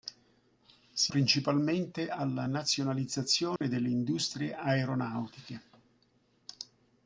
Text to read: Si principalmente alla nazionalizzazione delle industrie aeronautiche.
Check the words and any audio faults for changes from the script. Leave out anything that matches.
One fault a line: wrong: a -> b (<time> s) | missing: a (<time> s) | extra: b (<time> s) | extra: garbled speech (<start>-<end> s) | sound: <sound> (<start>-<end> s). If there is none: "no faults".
sound: dropout (3.6-3.6 s)